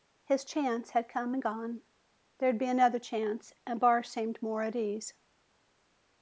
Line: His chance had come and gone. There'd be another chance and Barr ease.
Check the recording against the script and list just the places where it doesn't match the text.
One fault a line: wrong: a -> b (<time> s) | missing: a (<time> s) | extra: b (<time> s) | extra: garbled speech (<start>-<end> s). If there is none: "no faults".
extra: seemed more at (4.0 s)